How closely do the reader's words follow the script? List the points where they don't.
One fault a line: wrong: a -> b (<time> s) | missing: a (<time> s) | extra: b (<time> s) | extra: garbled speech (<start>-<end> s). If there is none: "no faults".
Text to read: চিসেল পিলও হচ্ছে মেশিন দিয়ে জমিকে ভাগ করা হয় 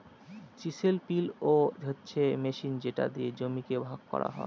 extra: যেটা (2.8 s)